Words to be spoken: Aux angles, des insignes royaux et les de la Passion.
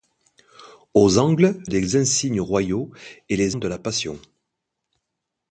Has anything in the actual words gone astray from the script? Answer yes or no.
no